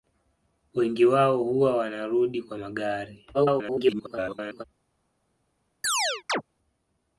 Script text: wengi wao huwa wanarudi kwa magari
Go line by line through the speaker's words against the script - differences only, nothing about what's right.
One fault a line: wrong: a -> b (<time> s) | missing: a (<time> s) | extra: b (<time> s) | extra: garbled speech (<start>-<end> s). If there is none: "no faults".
extra: garbled speech (3.3-4.6 s)